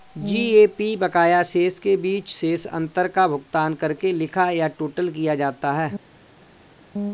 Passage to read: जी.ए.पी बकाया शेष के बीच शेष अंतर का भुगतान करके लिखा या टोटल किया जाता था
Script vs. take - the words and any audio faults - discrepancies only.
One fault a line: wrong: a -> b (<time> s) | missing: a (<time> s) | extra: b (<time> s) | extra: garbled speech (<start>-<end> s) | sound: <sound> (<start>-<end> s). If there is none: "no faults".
wrong: था -> है (5.7 s)